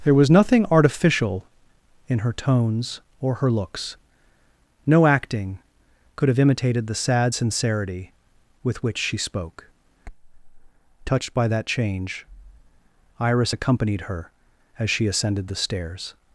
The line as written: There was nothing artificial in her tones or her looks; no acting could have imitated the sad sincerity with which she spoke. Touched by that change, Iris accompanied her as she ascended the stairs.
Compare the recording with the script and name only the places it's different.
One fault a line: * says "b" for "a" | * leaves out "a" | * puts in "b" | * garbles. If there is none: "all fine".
all fine